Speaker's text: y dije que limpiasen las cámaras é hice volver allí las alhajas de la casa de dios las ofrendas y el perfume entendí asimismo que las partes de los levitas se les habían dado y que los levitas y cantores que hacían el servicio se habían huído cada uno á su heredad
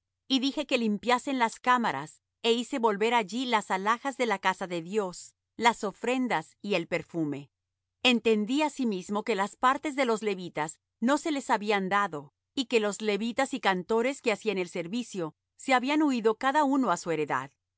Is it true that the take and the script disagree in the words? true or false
true